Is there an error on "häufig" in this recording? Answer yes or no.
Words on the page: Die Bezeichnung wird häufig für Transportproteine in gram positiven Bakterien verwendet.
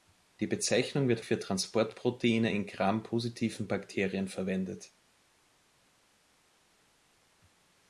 yes